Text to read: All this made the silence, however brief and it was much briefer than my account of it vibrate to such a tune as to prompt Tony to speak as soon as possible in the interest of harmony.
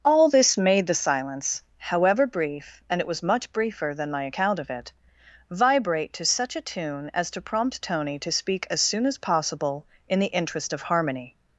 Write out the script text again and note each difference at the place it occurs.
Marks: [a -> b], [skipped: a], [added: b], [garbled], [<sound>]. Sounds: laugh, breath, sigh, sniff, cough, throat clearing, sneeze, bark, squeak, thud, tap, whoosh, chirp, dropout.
All this made the silence, however brief and it was much briefer than my account of it vibrate to such a tune as to prompt Tony to speak as soon as possible in the interest of harmony.